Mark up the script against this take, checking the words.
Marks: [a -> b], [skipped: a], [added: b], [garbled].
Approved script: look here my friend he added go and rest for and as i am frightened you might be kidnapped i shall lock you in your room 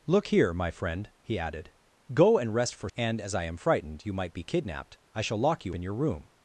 look here my friend he added go and rest for and as i am frightened you might be kidnapped i shall lock you in your room